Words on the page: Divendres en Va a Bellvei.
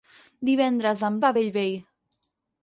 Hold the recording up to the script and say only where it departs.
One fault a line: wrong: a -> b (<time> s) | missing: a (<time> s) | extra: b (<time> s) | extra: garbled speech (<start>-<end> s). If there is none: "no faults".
no faults